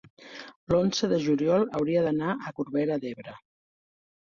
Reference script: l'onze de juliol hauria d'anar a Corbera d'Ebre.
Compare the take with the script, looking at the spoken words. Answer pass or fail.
pass